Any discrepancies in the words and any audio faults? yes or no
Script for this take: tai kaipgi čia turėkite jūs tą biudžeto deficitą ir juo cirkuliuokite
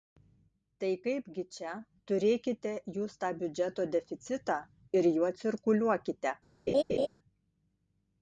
yes